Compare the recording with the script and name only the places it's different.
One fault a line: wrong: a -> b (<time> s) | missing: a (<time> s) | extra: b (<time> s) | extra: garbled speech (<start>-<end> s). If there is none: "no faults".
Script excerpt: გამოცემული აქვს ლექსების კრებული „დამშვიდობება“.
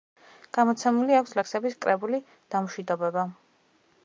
no faults